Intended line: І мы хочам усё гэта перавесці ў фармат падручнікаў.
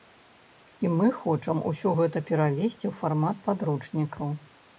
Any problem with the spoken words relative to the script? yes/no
no